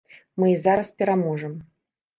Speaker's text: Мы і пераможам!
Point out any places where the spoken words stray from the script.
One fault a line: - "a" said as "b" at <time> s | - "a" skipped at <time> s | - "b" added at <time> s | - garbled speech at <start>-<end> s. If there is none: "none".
- "зараз" added at 0.7 s